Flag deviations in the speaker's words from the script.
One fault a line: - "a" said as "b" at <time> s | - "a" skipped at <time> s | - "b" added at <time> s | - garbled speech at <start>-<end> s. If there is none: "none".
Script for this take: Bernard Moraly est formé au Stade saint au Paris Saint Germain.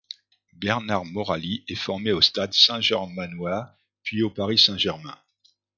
- "germanois puis" added at 2.8 s